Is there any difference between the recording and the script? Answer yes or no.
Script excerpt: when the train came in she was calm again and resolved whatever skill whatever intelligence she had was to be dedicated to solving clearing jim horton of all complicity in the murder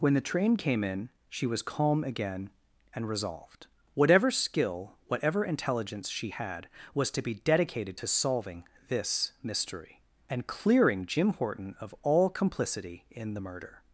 yes